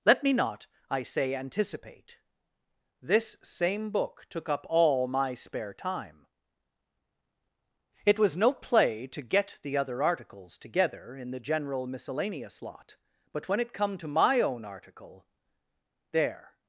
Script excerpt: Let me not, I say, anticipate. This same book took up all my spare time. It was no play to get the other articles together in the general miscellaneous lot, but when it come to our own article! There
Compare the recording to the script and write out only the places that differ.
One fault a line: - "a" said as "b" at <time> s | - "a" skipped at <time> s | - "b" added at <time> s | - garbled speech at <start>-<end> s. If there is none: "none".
- "our" said as "my" at 14.1 s